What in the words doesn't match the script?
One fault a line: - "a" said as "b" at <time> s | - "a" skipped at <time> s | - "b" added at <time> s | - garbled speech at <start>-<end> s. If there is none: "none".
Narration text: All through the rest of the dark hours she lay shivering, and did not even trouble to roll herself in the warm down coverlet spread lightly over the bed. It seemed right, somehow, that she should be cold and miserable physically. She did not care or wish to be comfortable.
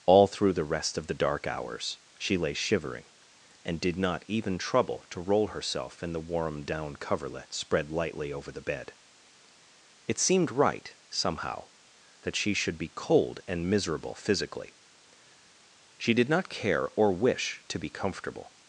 none